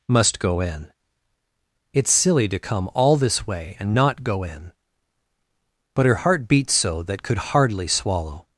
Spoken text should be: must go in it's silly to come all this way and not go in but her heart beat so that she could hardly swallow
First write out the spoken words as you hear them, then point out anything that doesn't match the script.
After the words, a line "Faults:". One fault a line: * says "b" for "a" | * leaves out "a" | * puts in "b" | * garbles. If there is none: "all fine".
must go in it's silly to come all this way and not go in but her heart beat so that could hardly swallow
Faults:
* leaves out "she"